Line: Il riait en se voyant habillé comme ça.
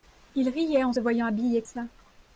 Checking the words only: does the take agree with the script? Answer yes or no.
no